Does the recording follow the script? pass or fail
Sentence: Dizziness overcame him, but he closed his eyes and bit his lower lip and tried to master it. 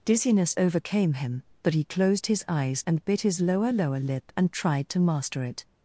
fail